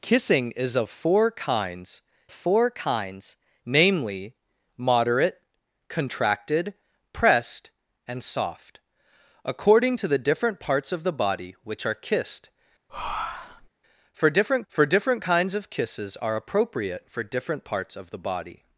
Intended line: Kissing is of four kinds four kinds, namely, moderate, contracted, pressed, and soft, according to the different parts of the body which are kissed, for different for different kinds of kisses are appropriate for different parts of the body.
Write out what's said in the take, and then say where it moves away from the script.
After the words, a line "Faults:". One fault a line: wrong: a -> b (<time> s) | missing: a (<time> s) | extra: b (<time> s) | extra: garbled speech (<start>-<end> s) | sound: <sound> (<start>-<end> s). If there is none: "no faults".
Kissing is of four kinds four kinds, namely, moderate, contracted, pressed, and soft, according to the different parts of the body which are kissed, for different for different kinds of kisses are appropriate for different parts of the body.
Faults:
sound: breath (12.9-13.7 s)